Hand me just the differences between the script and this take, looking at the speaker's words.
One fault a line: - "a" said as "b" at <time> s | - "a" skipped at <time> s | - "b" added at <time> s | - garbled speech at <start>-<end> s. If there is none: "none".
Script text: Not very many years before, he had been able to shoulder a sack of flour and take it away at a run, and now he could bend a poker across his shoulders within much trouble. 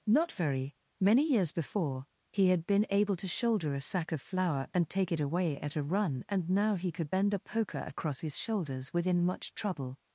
none